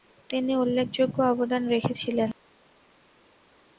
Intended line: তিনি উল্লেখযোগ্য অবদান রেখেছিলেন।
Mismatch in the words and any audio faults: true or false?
false